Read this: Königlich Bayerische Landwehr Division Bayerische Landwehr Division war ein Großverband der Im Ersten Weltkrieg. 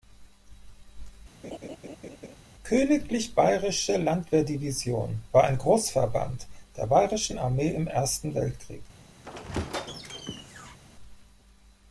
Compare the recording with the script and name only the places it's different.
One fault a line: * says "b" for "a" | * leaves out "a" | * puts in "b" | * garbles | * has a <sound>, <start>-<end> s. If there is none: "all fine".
* has a laugh, 1.4-2.4 s
* leaves out "Bayerische Landwehr Division"
* puts in "Bayerischen Armee"
* has a squeak, 9.2-10.8 s